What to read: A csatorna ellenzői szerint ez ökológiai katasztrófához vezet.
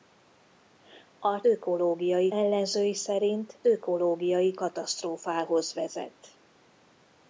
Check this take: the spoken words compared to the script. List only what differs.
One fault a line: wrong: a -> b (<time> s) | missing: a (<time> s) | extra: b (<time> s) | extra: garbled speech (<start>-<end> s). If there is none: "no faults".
wrong: csatorna -> ökológiai (1.4 s)
missing: ez (3.6 s)